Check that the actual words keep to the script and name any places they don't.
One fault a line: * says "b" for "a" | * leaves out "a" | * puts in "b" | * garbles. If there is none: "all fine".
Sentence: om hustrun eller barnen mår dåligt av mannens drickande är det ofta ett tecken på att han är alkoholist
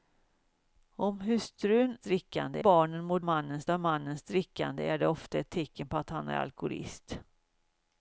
* says "drickande" for "eller"
* says "mannens" for "dåligt"